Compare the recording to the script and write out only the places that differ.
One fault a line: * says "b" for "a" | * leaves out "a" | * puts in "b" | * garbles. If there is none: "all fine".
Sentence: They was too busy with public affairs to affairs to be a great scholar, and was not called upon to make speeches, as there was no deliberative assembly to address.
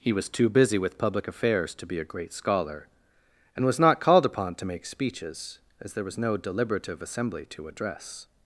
* says "He" for "They"
* leaves out "affairs to"